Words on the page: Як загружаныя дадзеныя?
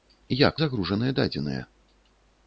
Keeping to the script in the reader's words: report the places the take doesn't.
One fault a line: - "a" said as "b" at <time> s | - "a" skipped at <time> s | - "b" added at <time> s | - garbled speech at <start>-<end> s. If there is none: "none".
none